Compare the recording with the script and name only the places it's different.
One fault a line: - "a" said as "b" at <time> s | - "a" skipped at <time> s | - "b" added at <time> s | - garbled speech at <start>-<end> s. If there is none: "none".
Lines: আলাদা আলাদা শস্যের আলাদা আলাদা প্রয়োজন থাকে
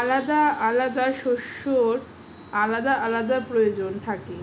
none